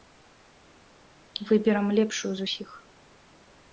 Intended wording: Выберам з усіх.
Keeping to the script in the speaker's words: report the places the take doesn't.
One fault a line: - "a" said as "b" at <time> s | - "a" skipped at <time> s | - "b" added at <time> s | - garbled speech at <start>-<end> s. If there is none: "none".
- "лепшую" added at 2.0 s